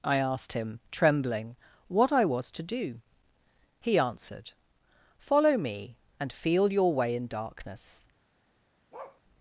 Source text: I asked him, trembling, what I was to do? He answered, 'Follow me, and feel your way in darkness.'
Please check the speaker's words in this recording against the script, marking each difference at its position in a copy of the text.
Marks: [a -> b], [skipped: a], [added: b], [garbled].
I asked him, trembling, what I was to do? He answered, 'Follow me, and feel your way in darkness.'